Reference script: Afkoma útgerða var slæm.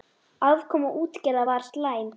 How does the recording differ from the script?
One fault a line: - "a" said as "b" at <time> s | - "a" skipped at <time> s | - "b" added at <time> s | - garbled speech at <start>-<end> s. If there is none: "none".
none